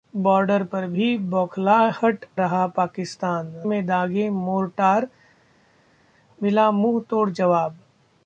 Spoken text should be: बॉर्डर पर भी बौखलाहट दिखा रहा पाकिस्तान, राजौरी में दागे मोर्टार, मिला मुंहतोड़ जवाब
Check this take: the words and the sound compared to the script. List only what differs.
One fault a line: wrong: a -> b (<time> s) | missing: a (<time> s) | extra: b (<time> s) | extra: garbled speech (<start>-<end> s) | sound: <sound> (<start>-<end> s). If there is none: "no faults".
missing: दिखा (2.2 s)
missing: राजौरी (3.5 s)